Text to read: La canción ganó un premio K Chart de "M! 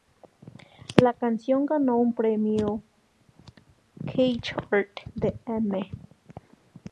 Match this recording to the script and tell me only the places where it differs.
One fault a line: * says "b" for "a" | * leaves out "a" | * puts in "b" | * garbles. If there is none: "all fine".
all fine